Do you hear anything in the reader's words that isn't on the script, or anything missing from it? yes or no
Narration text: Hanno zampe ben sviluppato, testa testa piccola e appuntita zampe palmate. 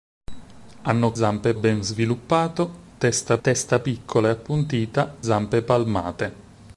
no